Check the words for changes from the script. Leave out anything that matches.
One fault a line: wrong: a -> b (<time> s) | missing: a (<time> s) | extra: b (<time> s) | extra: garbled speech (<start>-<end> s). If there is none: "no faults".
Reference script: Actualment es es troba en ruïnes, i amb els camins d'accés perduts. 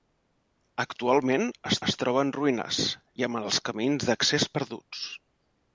no faults